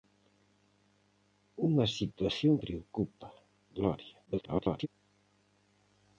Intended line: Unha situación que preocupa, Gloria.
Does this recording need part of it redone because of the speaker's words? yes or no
yes